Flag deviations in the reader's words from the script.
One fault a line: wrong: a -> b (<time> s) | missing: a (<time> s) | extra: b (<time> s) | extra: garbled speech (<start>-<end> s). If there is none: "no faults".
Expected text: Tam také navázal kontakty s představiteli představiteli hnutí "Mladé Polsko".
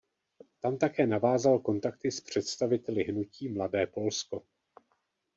missing: představiteli (3.0 s)